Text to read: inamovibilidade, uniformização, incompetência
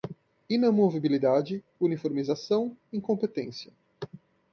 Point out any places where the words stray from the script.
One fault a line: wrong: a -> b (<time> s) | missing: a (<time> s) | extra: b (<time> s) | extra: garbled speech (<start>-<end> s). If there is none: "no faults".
no faults